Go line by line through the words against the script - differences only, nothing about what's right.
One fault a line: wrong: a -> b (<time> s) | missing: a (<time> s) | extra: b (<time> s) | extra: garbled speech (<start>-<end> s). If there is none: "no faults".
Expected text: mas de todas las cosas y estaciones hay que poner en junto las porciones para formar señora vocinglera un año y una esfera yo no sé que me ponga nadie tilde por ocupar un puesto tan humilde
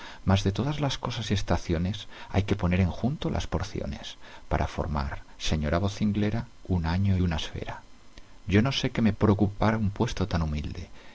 missing: y (7.2 s)
missing: ponga nadie tilde (9.1 s)